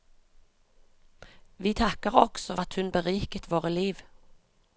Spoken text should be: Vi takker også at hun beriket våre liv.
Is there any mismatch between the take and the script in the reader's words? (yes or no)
no